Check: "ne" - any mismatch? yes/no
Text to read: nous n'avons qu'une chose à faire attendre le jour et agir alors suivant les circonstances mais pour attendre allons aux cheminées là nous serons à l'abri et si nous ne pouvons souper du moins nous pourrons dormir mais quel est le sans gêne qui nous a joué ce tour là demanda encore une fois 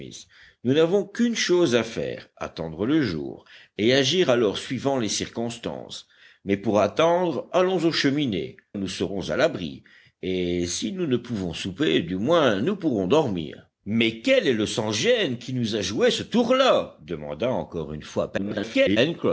no